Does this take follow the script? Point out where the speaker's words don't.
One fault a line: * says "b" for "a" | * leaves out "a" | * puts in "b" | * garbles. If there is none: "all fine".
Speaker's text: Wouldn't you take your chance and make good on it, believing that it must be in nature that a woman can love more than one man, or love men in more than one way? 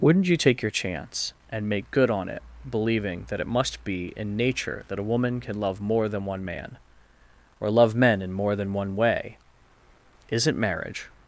* puts in "Isn't marriage"